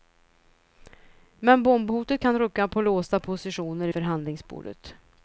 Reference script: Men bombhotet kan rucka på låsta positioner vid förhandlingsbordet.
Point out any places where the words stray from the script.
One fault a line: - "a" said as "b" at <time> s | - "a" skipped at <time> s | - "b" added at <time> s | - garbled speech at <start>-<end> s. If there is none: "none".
- "vid" skipped at 3.9 s